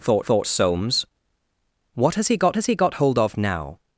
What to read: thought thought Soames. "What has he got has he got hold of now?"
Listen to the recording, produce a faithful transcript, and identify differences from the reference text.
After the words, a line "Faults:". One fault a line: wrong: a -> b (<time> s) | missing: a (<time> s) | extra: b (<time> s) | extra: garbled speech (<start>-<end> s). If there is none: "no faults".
thought thought Soames. "What has he got has he got hold of now?"
Faults:
no faults